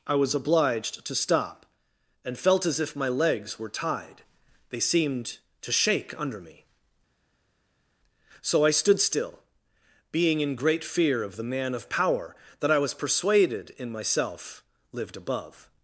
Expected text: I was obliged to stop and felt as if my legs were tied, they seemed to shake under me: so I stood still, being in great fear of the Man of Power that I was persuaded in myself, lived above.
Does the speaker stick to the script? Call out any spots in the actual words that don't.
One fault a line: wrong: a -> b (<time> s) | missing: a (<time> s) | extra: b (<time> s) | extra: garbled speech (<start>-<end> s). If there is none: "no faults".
no faults